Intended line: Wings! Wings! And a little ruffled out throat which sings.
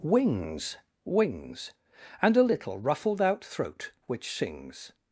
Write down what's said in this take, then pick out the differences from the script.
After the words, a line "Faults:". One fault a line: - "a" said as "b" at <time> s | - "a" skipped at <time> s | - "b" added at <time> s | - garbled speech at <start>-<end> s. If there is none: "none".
Wings! Wings! And a little ruffled out throat which sings.
Faults:
none